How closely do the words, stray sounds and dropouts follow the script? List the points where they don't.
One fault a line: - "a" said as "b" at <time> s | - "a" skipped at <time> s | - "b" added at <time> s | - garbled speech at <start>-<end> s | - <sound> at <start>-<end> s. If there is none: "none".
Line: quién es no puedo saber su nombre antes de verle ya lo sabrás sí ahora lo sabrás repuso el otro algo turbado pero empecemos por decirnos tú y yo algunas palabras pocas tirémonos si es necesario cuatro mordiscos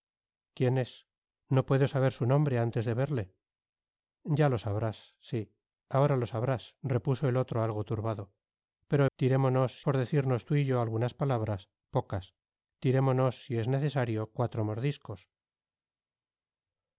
- "empecemos" said as "tirémonos" at 9.2 s